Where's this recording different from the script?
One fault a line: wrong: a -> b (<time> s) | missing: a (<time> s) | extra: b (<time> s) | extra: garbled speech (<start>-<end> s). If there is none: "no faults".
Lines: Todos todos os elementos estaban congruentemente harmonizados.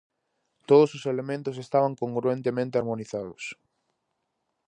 missing: todos (0.9 s)